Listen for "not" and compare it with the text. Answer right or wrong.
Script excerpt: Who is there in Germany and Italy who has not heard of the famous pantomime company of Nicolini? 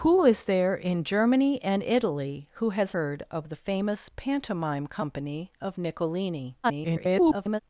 wrong